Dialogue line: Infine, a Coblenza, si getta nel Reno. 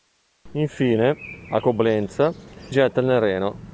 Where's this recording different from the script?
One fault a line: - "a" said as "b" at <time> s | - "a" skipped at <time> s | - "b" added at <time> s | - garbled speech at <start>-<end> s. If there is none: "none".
- "si" skipped at 2.3 s